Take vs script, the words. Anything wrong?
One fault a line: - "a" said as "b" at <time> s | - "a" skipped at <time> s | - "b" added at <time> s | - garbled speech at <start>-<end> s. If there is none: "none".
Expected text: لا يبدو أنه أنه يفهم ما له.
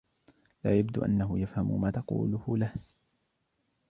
- "أنه" skipped at 1.4 s
- "تقوله" added at 1.9 s